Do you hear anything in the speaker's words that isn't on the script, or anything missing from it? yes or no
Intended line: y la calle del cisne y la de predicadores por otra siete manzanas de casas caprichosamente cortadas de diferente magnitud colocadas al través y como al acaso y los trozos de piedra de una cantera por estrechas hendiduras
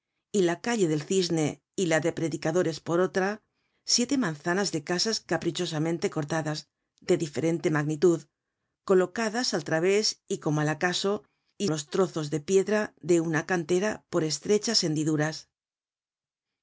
no